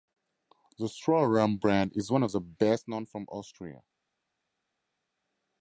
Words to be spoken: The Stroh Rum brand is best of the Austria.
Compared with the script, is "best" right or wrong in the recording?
wrong